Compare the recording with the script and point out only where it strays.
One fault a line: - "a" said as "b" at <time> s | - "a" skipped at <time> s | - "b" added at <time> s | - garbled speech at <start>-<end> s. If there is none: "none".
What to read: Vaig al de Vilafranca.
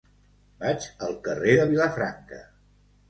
- "carrer" added at 1.3 s